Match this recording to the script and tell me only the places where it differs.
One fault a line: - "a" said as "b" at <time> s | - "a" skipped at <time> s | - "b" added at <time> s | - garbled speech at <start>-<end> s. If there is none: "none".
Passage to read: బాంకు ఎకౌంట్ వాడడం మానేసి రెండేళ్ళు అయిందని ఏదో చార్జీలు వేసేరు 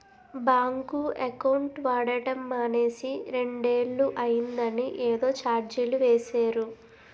none